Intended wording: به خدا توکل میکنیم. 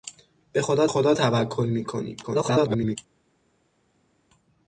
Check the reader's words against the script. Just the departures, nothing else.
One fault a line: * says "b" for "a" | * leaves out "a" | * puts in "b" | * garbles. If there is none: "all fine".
* puts in "خدا"
* garbles